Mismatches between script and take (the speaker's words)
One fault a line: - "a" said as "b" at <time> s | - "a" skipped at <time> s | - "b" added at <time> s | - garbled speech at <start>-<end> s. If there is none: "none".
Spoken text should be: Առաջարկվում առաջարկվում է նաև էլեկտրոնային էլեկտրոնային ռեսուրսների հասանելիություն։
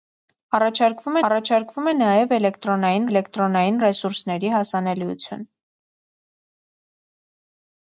none